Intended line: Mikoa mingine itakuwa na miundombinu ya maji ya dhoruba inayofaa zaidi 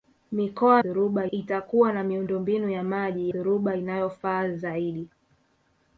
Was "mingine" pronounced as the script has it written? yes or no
no